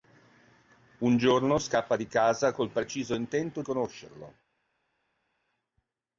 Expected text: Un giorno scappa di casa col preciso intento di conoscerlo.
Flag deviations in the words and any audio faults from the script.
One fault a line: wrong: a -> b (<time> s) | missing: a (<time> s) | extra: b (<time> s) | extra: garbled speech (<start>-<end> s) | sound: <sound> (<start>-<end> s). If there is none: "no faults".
missing: di (3.6 s)